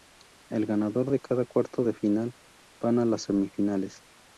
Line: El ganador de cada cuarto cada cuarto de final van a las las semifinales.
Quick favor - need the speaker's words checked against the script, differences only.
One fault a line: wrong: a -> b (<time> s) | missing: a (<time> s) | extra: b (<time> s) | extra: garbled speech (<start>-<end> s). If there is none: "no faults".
missing: cada cuarto (1.8 s)
missing: las (3.2 s)